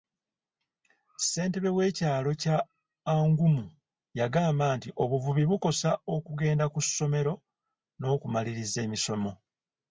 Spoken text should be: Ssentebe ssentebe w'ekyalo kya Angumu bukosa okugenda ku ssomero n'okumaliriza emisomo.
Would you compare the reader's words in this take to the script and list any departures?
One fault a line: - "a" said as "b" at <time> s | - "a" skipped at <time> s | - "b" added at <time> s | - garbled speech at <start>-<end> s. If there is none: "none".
- "ssentebe" skipped at 1.7 s
- "yagamba nti obuvubi" added at 4.2 s